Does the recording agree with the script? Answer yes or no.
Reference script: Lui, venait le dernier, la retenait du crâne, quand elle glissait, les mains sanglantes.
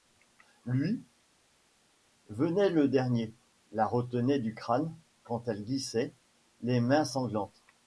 yes